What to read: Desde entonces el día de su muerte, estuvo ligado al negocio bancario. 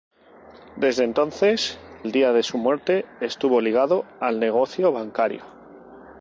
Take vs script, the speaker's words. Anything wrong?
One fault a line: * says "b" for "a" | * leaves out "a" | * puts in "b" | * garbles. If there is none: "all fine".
all fine